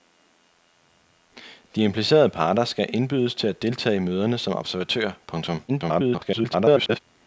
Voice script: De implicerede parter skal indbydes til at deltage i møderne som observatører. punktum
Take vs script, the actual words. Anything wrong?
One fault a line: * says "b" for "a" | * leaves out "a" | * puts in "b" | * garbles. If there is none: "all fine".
* garbles